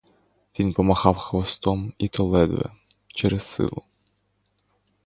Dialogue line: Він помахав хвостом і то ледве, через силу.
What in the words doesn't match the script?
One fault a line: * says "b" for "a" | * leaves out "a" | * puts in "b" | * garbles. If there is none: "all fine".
all fine